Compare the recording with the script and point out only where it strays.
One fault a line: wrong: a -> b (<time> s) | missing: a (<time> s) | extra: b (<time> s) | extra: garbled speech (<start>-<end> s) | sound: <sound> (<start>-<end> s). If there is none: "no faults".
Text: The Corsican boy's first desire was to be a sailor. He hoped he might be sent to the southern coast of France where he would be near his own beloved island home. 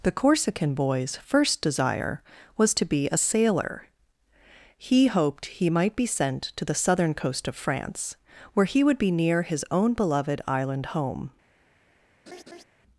sound: laugh (12.3-12.6 s)